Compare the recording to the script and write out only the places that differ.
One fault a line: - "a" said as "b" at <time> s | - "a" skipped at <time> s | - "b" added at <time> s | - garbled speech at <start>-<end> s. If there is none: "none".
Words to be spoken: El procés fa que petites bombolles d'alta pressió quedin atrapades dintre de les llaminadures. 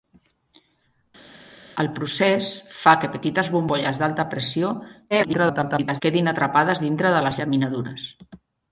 - garbled speech at 5.1-6.0 s